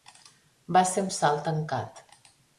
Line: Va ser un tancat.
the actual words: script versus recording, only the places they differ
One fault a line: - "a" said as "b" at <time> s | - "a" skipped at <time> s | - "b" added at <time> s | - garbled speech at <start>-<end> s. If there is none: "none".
- "salt" added at 1.2 s